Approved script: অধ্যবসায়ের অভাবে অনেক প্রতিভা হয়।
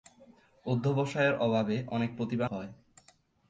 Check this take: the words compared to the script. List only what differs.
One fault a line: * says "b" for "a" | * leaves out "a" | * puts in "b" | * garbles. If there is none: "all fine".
all fine